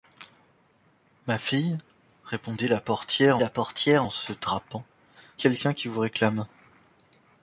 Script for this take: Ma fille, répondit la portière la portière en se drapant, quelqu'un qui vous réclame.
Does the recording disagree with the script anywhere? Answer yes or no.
no